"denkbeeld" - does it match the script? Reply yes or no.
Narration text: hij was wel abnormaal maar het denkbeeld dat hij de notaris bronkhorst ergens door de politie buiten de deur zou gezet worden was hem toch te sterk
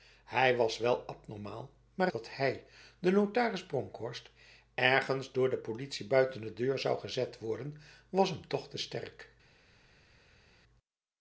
no